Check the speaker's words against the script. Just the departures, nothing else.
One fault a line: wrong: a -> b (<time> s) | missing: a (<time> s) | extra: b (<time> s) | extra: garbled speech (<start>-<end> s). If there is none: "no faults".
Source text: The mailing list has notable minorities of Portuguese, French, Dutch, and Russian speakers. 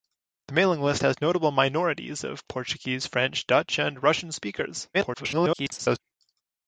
extra: garbled speech (4.9-6.0 s)